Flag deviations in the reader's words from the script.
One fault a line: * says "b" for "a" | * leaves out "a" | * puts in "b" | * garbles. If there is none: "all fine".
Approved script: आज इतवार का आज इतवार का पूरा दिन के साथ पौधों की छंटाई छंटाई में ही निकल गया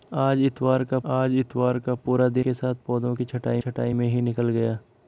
all fine